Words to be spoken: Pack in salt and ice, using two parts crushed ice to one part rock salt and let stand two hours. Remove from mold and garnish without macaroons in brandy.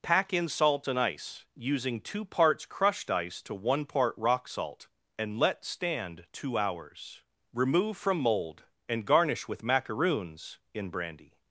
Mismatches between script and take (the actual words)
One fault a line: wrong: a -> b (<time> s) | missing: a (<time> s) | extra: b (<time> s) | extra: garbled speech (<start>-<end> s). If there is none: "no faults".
wrong: without -> with (9.5 s)